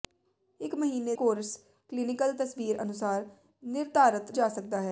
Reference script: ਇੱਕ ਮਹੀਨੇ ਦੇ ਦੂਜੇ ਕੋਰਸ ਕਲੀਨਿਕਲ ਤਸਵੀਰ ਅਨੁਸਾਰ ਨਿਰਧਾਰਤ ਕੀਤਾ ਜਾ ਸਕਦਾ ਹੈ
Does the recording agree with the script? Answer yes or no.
no